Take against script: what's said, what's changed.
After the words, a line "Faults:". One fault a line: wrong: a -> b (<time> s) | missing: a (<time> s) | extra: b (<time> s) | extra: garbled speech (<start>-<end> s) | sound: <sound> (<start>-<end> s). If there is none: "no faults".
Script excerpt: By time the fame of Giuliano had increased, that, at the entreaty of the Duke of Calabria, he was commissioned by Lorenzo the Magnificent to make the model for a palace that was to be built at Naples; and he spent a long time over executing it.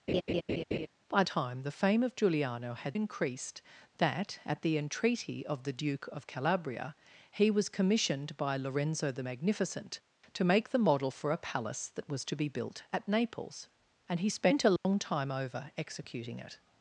By time the fame of Giuliano had increased, that, at the entreaty of the Duke of Calabria, he was commissioned by Lorenzo the Magnificent to make the model for a palace that was to be built at Naples; and he spent a long time over executing it.
Faults:
sound: laugh (0.1-0.9 s)
sound: dropout (14.8-14.8 s)